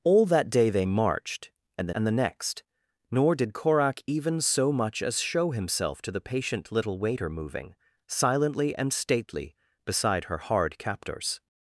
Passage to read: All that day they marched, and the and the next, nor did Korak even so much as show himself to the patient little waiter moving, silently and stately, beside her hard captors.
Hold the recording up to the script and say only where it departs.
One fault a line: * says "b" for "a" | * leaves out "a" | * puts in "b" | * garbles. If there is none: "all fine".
all fine